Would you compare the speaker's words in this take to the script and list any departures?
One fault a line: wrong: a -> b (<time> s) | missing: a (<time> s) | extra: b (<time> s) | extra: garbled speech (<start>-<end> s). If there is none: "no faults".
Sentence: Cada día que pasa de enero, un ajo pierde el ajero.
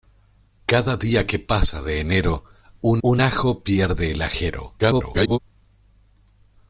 extra: un (3.0 s)
extra: garbled speech (4.8-5.4 s)